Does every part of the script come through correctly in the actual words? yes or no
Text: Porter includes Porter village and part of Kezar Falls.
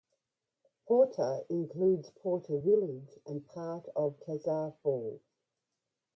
yes